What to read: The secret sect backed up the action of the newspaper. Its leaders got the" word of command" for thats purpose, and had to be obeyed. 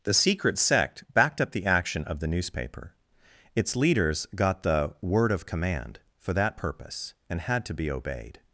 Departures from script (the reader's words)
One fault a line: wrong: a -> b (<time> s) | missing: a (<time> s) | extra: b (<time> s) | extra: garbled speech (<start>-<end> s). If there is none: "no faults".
wrong: thats -> that (6.3 s)